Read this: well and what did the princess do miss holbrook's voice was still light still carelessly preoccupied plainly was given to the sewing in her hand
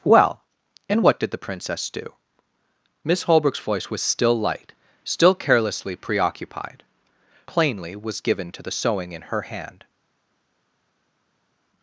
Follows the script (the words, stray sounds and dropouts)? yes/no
yes